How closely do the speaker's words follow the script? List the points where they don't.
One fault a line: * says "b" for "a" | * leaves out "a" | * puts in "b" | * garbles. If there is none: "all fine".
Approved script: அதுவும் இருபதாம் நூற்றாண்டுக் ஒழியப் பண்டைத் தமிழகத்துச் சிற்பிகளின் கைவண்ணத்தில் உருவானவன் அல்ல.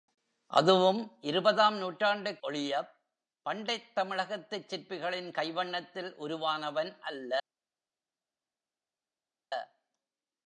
all fine